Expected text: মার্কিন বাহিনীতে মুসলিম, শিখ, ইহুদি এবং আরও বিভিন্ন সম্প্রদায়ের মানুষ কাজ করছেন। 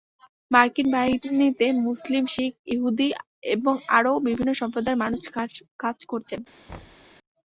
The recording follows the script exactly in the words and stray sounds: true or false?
false